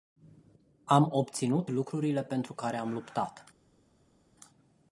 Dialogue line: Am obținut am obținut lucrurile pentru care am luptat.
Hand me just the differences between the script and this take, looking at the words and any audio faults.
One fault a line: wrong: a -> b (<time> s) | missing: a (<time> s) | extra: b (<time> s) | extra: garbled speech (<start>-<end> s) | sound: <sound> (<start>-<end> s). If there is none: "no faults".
missing: am obținut (1.7 s)